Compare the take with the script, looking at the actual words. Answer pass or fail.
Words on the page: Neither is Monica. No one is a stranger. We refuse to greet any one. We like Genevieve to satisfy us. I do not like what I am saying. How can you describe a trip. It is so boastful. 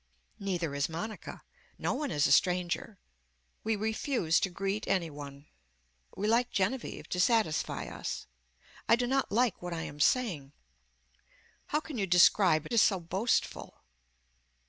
fail